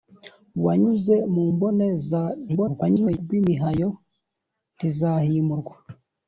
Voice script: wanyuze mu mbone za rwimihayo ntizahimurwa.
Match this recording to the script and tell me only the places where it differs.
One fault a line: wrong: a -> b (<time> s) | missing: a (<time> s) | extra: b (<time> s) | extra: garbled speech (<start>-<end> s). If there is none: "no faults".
extra: garbled speech (2.5-3.2 s)